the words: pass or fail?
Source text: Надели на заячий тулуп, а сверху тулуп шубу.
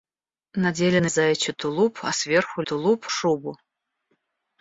pass